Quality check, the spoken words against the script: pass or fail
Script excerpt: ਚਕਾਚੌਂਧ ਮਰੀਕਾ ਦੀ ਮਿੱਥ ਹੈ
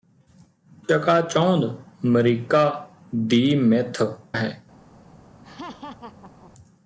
pass